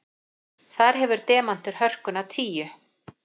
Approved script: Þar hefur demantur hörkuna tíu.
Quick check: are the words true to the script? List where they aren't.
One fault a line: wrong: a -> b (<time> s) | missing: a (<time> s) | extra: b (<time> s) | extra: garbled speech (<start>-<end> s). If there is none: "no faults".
no faults